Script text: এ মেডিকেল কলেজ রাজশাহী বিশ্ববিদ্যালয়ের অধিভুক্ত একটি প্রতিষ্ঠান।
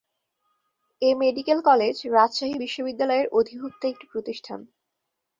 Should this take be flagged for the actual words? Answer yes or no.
no